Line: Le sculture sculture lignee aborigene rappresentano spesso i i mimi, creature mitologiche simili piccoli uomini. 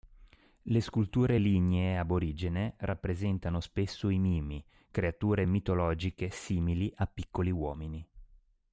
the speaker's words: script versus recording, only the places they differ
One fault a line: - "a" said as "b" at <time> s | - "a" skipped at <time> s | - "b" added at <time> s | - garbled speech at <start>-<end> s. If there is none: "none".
- "sculture" skipped at 1.4 s
- "i" skipped at 4.2 s
- "a" added at 6.9 s